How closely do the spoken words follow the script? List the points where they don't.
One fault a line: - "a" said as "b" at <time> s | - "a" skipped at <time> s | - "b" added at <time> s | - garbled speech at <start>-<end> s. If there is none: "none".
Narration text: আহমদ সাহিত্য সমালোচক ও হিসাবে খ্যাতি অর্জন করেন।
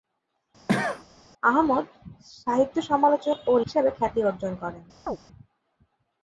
none